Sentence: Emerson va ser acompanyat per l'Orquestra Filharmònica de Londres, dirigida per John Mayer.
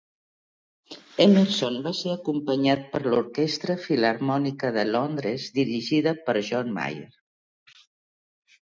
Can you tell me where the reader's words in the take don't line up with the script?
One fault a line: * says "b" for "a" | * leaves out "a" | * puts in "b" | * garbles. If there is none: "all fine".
all fine